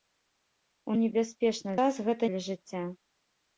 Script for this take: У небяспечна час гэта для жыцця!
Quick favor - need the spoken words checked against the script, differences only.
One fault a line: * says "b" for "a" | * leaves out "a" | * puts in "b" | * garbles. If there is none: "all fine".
all fine